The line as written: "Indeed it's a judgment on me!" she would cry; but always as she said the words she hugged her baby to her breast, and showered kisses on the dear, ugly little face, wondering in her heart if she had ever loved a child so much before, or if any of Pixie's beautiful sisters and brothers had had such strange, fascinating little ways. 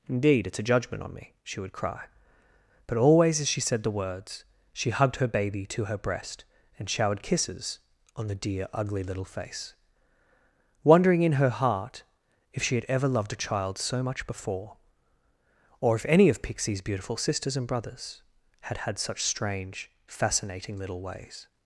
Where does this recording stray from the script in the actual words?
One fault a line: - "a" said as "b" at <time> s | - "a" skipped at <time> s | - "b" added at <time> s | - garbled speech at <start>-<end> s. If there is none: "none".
none